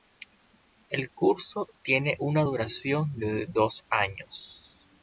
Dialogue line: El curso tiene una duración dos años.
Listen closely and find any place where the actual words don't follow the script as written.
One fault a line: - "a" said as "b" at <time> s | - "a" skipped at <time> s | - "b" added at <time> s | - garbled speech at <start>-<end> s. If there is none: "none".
- "de" added at 3.2 s